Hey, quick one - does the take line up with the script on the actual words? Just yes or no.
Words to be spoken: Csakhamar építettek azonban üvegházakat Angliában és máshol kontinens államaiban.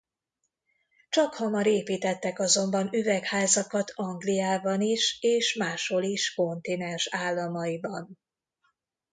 no